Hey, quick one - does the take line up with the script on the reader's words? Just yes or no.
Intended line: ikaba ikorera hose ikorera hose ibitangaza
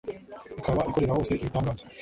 no